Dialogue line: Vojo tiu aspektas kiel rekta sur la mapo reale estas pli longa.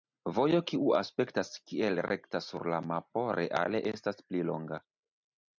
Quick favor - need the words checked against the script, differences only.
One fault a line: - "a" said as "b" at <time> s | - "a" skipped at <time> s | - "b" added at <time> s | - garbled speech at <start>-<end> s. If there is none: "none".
- "tiu" said as "kiu" at 0.7 s